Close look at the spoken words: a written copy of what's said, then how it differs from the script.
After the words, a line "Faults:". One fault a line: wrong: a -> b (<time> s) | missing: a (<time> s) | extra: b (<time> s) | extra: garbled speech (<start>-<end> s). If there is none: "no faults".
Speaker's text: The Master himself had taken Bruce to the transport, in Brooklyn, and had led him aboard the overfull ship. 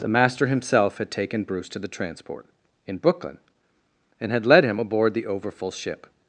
The Master himself had taken Bruce to the transport, in Brooklyn, and had led him aboard the overfull ship.
Faults:
no faults